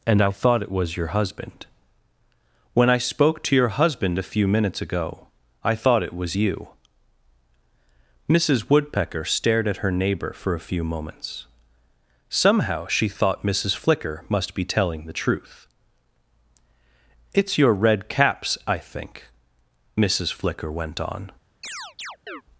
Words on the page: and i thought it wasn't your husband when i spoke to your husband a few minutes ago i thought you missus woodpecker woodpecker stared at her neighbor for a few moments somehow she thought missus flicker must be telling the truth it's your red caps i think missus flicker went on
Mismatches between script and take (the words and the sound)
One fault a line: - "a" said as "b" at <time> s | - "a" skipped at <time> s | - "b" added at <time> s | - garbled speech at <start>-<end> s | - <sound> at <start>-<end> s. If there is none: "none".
- "wasn't" said as "was" at 0.7 s
- "it was" added at 6.0 s
- "woodpecker" skipped at 9.3 s
- chirp at 21.6-22.4 s